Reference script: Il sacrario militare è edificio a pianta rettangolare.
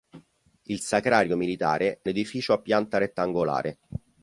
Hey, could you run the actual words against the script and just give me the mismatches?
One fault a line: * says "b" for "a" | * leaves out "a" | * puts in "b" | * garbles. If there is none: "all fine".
all fine